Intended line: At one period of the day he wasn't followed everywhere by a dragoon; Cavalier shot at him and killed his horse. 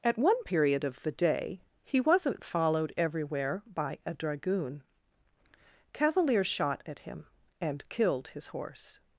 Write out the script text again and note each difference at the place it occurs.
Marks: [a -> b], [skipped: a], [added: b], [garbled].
At one period of the day he wasn't followed everywhere by a dragoon; Cavalier shot at him and killed his horse.